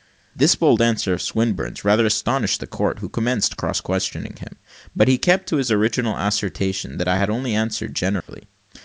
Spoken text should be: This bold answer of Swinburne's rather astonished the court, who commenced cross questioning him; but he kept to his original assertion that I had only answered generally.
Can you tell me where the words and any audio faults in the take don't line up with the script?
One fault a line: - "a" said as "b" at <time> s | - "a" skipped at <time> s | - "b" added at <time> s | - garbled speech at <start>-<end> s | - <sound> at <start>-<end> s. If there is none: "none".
- dropout at 8.2-8.3 s